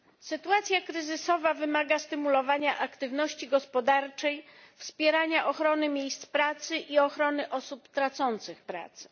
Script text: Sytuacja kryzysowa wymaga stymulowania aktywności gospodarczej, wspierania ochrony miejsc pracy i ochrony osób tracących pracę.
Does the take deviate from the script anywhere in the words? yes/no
no